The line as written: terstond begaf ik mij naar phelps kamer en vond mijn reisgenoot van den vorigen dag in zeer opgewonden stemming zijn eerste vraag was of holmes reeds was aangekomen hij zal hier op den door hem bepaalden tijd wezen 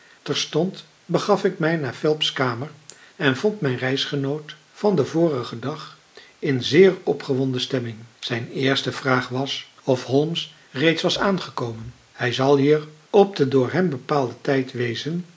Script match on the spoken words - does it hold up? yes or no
yes